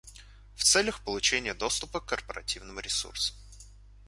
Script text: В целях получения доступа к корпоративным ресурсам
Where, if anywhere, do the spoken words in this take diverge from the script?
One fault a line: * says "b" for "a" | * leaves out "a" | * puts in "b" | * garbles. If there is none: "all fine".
all fine